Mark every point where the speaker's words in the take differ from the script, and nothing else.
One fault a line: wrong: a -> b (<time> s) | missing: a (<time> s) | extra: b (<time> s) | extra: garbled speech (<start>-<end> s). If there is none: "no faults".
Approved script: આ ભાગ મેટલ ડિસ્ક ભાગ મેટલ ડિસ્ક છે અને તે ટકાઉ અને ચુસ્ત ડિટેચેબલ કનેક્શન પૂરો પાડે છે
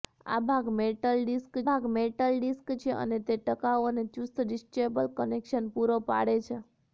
no faults